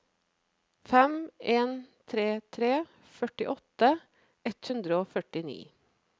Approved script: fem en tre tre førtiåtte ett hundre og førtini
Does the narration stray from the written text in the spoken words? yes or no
no